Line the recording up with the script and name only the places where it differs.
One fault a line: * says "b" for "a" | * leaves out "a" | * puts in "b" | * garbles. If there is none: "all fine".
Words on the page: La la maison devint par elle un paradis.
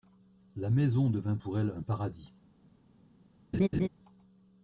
* leaves out "la"
* says "pour" for "par"